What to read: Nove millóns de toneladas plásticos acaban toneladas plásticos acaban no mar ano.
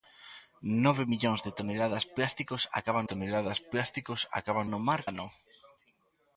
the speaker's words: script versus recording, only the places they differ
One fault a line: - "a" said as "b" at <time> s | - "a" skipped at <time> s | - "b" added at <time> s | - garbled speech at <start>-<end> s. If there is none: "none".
none